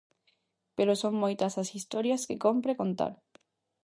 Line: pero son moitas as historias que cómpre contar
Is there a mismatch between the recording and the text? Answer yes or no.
no